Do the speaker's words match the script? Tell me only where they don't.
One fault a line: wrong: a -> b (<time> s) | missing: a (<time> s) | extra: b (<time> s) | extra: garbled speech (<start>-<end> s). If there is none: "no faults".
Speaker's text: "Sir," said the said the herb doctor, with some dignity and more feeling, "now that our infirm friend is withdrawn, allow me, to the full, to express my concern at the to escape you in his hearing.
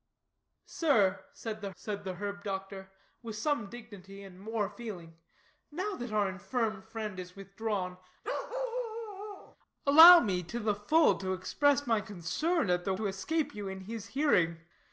no faults